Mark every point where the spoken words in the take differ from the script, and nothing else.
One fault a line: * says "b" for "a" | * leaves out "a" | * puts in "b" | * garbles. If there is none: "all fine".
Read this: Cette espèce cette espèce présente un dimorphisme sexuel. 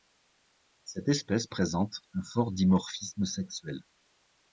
* leaves out "cette espèce"
* puts in "fort"